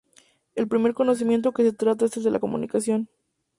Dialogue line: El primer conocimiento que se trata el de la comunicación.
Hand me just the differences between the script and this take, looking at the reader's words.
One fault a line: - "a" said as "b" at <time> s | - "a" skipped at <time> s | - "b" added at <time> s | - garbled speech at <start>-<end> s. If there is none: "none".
- "es" added at 2.1 s